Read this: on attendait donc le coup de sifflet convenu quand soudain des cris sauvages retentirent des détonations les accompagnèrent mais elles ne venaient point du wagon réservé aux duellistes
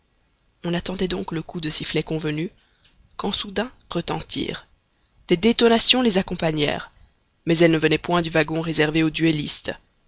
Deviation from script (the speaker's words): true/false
true